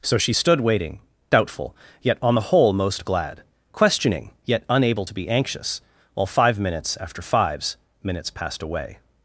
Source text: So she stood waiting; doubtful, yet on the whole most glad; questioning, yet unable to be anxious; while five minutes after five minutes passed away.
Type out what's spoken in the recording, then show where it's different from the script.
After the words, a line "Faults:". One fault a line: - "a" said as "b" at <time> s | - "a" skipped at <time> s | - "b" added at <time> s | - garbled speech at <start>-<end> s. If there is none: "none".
So she stood waiting; doubtful, yet on the whole most glad; questioning, yet unable to be anxious; while five minutes after fives minutes passed away.
Faults:
- "five" said as "fives" at 7.2 s